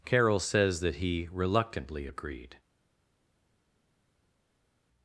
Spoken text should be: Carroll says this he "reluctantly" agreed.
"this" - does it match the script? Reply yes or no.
no